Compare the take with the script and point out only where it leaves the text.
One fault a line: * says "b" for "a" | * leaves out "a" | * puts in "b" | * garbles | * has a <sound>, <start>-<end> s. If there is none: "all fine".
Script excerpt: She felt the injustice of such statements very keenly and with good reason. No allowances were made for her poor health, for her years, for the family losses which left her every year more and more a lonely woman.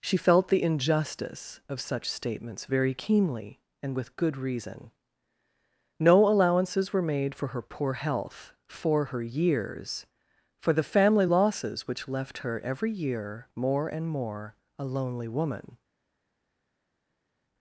all fine